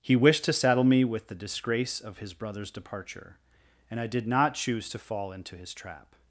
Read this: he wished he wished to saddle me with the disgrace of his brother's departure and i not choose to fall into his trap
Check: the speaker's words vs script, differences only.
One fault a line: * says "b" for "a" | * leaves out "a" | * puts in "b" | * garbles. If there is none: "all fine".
* leaves out "he wished"
* puts in "did"